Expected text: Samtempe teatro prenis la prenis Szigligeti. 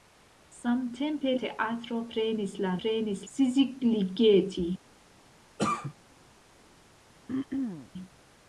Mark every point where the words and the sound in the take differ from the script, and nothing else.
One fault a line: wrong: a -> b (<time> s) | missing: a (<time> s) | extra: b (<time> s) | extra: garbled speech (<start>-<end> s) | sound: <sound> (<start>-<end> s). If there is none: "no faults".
sound: cough (5.6-5.9 s)
sound: throat clearing (7.3-7.9 s)